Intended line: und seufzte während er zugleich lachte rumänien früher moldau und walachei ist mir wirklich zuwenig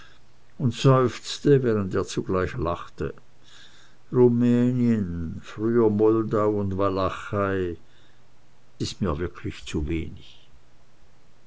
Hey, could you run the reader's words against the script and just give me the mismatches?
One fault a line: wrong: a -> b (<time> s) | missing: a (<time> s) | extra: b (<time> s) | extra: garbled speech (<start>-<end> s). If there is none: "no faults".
no faults